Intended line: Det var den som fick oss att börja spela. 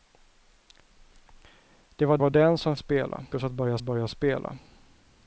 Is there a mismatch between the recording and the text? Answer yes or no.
yes